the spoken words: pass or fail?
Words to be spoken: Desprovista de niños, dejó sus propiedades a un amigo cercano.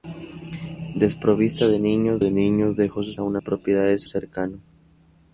fail